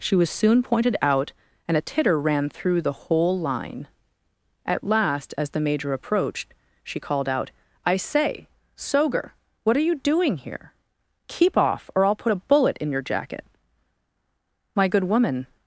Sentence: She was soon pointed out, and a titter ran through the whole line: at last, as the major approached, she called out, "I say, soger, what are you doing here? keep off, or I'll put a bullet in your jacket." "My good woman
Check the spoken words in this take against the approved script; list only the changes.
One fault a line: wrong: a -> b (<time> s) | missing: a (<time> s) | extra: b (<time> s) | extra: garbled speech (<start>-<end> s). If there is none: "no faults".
no faults